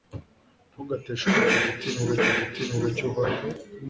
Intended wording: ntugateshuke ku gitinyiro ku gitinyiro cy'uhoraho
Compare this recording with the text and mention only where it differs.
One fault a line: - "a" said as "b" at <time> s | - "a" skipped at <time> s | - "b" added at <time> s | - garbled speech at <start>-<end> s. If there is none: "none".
none